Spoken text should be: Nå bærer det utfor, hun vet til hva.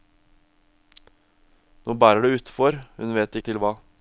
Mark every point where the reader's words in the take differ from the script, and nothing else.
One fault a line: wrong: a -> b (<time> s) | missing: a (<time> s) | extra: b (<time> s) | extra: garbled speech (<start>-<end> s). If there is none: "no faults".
no faults